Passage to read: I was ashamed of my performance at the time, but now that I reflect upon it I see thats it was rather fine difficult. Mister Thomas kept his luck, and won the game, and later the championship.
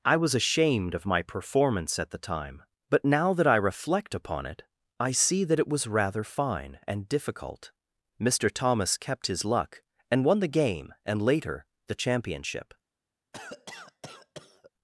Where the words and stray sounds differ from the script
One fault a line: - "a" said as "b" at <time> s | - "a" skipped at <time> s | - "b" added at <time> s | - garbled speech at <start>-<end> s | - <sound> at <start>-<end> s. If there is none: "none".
- "thats" said as "that" at 5.4 s
- "and" added at 6.9 s
- cough at 13.3-14.7 s